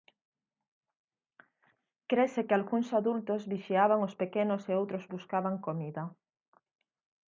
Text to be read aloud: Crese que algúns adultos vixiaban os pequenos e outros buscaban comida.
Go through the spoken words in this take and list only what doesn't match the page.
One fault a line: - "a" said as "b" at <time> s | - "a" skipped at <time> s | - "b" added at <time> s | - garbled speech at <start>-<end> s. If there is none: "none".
none